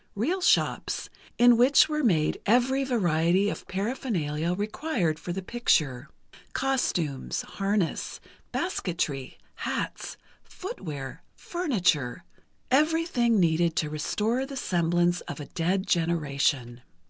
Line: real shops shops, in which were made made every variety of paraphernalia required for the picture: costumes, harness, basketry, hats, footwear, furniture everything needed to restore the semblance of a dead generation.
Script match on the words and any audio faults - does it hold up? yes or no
no